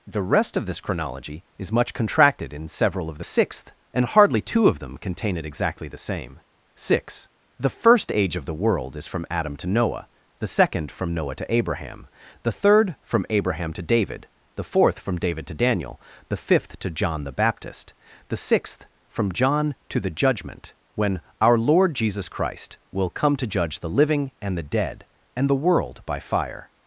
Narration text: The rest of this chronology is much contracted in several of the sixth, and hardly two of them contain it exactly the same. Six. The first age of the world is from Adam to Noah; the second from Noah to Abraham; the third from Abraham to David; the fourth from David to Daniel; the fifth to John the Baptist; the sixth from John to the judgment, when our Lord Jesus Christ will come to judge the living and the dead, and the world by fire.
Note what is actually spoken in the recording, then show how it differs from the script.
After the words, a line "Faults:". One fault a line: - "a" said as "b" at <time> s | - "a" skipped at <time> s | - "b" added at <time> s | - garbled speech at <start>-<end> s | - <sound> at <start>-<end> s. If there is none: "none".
The rest of this chronology is much contracted in several of the sixth, and hardly two of them contain it exactly the same. Six. The first age of the world is from Adam to Noah; the second from Noah to Abraham; the third from Abraham to David; the fourth from David to Daniel; the fifth to John the Baptist; the sixth from John to the judgment, when our Lord Jesus Christ will come to judge the living and the dead, and the world by fire.
Faults:
none